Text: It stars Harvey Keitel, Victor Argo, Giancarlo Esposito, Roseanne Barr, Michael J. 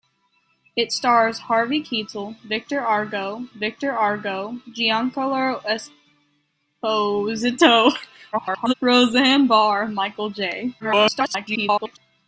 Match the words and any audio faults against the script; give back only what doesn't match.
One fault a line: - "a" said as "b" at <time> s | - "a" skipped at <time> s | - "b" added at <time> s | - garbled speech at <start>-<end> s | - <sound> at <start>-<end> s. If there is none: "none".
- "Victor Argo" added at 3.6 s
- garbled speech at 8.3-8.7 s
- garbled speech at 10.8-12.0 s